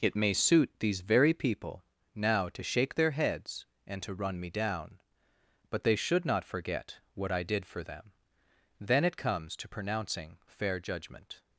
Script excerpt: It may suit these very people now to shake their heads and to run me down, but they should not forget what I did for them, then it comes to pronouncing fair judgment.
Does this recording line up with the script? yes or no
yes